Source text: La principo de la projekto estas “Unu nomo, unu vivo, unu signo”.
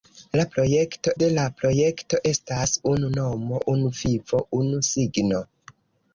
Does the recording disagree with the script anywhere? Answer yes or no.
yes